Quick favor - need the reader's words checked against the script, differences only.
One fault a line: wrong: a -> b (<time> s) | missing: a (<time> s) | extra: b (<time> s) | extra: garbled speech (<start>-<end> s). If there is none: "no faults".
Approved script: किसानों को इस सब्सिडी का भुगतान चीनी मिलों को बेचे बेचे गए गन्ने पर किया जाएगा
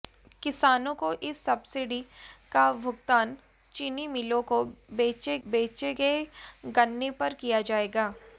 no faults